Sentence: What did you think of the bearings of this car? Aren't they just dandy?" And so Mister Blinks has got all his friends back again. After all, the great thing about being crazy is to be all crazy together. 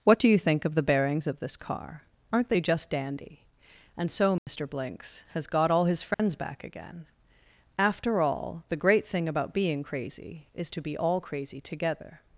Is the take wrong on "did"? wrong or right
wrong